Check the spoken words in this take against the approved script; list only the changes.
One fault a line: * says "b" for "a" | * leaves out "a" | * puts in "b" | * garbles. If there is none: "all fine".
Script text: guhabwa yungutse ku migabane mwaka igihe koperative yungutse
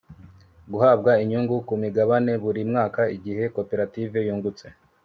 * says "inyungu" for "yungutse"
* puts in "buri"